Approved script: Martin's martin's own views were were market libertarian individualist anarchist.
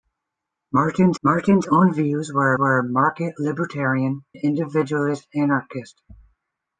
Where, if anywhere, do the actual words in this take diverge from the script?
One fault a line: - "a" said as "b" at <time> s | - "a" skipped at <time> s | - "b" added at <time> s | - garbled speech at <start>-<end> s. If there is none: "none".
none